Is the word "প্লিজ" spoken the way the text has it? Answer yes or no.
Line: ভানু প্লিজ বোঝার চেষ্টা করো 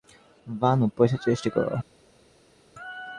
no